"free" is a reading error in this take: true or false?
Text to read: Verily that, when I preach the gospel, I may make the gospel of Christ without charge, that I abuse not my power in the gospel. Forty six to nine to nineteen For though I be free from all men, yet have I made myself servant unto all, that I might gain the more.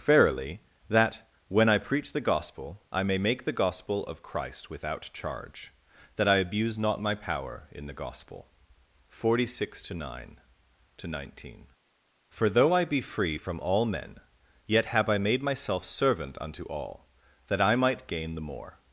false